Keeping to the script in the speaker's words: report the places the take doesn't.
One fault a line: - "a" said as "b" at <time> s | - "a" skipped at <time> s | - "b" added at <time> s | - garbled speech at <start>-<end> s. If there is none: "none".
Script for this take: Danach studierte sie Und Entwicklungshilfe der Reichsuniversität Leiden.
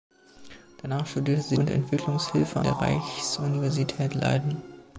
none